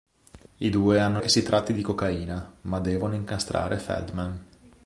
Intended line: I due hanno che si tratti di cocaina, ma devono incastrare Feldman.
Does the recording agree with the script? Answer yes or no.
yes